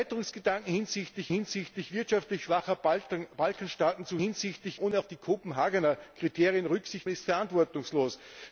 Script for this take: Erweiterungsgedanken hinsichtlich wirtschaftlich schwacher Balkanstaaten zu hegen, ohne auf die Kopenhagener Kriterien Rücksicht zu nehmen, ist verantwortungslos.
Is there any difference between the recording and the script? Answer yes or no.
yes